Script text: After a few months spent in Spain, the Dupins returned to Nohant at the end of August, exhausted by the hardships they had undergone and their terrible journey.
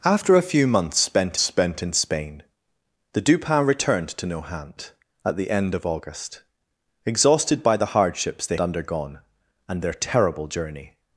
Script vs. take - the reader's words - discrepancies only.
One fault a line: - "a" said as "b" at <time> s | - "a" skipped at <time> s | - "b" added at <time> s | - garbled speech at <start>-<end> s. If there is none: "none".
- "spent" added at 1.4 s
- "had" skipped at 8.6 s